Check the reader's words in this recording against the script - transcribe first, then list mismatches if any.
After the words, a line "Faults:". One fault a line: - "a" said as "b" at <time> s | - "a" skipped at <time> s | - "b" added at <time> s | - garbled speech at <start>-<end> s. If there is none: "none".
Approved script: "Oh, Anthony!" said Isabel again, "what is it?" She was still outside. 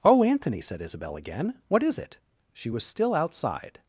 "Oh, Anthony!" said Isabel again, "what is it?" She was still outside.
Faults:
none